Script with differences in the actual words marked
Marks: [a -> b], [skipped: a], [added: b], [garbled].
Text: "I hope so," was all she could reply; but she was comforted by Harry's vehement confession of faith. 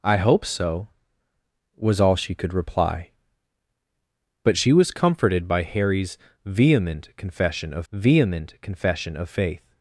"I hope so," was all she could reply; but she was comforted by Harry's vehement confession of [added: vehement confession of] faith.